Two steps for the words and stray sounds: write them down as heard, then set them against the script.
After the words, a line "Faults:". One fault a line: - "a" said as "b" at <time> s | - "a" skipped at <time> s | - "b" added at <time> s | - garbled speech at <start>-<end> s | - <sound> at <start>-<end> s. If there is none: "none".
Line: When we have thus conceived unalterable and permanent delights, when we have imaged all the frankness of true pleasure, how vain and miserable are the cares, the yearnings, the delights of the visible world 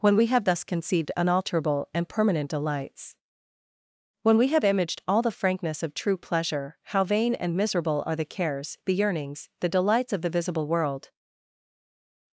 When we have thus conceived unalterable and permanent delights, when we have imaged all the frankness of true pleasure, how vain and miserable are the cares, the yearnings, the delights of the visible world
Faults:
none